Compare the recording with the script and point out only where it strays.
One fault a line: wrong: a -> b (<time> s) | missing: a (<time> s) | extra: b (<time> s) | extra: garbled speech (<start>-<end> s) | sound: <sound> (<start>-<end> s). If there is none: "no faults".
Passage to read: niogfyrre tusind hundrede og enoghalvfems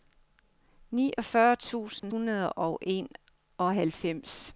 sound: dropout (2.0-2.0 s)